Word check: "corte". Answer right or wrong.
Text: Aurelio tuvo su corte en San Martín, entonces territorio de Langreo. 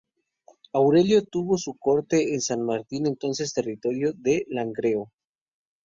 right